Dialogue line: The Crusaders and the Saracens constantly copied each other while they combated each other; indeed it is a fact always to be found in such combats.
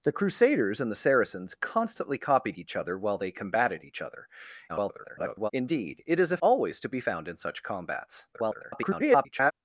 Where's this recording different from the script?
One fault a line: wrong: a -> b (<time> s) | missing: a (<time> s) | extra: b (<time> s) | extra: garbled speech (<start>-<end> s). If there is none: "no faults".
extra: garbled speech (4.7-5.5 s)
missing: fact (6.4 s)
extra: garbled speech (8.3-9.5 s)